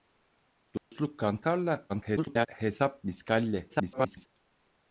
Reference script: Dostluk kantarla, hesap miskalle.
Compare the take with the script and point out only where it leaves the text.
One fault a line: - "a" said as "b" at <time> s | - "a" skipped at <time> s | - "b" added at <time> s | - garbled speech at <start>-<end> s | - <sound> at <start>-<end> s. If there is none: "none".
- dropout at 0.8-0.9 s
- garbled speech at 1.9-2.5 s
- garbled speech at 3.7-4.3 s